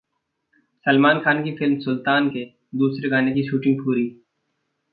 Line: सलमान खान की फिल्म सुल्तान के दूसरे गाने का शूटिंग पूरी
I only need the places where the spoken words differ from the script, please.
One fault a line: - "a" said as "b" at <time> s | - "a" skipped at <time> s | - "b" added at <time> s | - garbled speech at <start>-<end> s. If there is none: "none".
- "का" said as "की" at 3.3 s